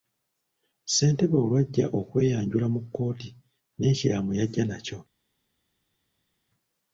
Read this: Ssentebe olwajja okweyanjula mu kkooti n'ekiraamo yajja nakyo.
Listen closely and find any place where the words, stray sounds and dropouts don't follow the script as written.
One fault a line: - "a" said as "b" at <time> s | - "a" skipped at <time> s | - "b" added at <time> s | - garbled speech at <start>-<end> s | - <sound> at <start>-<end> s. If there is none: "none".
none